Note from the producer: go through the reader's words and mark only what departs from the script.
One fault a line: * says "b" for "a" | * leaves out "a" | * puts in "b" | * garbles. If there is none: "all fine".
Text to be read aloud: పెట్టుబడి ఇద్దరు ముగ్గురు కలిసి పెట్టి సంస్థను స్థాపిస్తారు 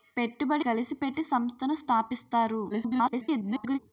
* leaves out "ఇద్దరు ముగ్గురు"
* garbles